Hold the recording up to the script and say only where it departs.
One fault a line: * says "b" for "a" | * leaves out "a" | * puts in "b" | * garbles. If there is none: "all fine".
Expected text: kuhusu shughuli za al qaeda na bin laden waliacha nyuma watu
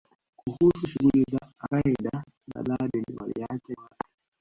* leaves out "al"
* leaves out "bin"
* leaves out "nyuma"